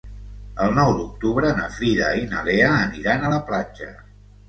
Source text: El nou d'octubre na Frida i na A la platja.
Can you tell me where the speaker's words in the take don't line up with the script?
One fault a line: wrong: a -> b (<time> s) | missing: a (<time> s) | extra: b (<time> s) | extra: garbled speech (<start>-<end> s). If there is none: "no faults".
extra: Lea aniran (2.5 s)